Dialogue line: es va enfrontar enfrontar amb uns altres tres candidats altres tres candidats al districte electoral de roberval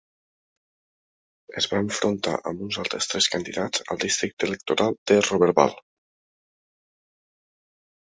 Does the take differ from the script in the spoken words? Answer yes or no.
yes